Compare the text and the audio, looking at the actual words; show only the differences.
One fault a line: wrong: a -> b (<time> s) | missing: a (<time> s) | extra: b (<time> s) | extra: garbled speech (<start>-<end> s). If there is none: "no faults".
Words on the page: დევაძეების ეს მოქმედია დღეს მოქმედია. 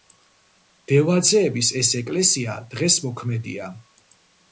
wrong: მოქმედია -> ეკლესია (2.0 s)